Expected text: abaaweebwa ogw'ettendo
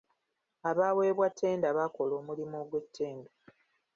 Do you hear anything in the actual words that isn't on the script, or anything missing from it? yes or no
yes